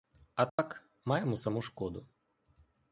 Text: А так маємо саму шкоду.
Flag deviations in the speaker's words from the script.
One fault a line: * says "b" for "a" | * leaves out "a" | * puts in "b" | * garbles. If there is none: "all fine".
all fine